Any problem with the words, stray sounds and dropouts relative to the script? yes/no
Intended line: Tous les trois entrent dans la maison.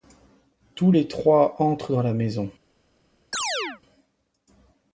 yes